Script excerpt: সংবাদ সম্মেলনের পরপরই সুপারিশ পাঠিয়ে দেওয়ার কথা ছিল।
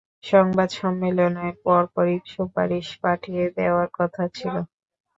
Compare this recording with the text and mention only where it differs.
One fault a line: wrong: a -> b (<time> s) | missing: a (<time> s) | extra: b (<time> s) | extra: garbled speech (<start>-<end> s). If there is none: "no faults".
no faults